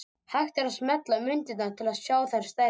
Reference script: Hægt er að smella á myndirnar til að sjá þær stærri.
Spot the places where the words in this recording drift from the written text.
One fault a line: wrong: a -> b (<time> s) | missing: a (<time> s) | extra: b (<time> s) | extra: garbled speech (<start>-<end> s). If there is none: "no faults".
no faults